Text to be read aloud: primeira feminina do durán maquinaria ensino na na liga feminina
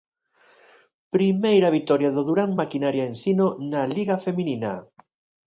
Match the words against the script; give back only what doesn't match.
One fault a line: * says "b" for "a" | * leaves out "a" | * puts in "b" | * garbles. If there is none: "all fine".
* says "vitoria" for "feminina"
* leaves out "na"